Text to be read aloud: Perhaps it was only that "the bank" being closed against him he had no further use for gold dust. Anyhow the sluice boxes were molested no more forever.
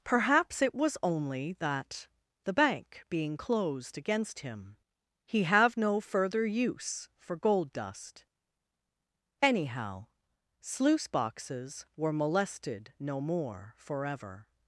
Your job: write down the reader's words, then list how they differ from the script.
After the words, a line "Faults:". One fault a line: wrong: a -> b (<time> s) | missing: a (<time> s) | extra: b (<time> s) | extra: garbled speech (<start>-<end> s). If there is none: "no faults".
Perhaps it was only that "the bank" being closed against him he have no further use for gold dust. Anyhow sluice boxes were molested no more forever.
Faults:
wrong: had -> have (5.4 s)
missing: the (10.1 s)